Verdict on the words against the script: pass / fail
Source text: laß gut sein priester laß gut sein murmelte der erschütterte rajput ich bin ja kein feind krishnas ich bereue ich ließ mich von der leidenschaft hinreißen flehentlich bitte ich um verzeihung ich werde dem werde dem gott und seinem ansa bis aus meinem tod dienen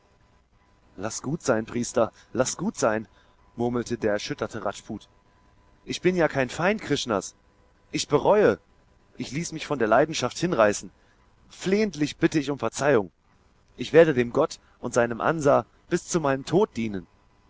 fail